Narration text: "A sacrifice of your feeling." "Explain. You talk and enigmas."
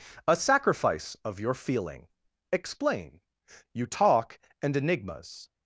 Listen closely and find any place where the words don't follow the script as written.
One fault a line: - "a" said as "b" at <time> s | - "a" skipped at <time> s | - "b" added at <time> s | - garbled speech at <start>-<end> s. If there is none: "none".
none